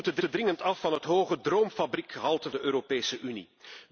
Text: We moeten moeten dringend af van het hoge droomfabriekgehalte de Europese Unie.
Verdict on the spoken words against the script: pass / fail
pass